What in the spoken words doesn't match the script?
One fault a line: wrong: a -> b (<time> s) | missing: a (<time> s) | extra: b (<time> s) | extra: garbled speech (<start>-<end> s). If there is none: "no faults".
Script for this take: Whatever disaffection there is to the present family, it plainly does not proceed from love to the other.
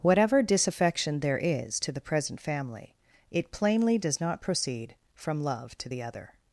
no faults